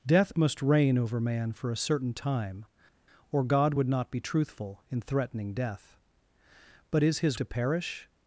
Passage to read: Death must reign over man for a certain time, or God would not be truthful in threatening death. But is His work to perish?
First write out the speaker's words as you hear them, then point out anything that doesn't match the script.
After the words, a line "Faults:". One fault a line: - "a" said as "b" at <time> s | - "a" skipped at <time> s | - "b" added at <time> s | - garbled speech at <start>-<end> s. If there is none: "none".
Death must reign over man for a certain time, or God would not be truthful in threatening death. But is His to perish?
Faults:
- "work" skipped at 7.4 s